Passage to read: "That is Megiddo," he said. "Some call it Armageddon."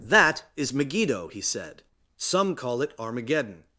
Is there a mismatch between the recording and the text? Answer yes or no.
no